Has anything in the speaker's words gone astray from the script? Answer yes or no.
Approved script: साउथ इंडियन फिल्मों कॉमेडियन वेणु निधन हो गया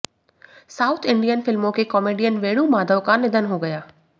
yes